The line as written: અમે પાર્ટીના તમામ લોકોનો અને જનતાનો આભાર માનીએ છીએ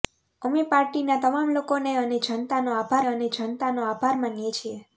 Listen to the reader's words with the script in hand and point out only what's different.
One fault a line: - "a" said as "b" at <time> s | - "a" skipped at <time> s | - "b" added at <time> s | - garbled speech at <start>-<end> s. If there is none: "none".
- "અને જનતાનો આભાર" added at 3.1 s